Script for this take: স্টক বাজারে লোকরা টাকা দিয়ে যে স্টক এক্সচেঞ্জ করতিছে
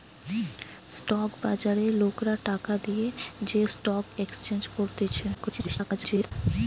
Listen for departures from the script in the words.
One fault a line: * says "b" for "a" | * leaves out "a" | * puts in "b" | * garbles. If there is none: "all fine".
* garbles